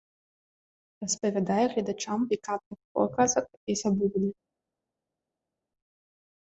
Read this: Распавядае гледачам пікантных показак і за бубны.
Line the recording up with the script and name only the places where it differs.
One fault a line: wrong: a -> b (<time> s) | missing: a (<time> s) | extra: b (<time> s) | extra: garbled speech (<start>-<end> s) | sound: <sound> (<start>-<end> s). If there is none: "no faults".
no faults